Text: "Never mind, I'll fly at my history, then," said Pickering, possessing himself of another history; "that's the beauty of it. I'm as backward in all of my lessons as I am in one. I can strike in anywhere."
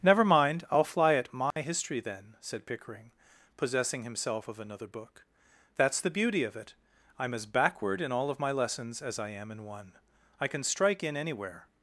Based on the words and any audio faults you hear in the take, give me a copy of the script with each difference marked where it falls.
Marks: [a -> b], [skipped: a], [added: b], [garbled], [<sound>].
"Never mind, I'll fly at my [dropout] history, then," said Pickering, possessing himself of another [history; -> book] "that's the beauty of it. I'm as backward in all of my lessons as I am in one. I can strike in anywhere."